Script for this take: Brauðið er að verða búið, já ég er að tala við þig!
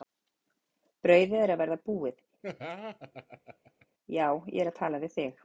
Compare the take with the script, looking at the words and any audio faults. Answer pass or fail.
fail